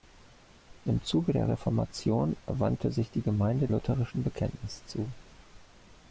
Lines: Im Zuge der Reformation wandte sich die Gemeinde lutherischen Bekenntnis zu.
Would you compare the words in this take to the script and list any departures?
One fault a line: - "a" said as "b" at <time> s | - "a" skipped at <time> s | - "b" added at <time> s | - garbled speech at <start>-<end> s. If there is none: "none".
none